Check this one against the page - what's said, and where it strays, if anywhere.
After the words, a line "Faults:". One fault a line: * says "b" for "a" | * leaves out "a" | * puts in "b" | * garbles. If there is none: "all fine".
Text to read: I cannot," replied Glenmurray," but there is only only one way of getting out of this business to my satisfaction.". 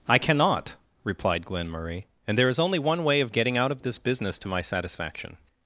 I cannot," replied Glenmurray," and there is only one way of getting out of this business to my satisfaction.".
Faults:
* says "and" for "but"
* leaves out "only"